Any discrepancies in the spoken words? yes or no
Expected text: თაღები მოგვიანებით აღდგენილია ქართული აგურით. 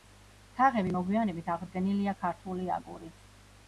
no